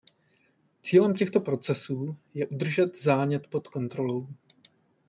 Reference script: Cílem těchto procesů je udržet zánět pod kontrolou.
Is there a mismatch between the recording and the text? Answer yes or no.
no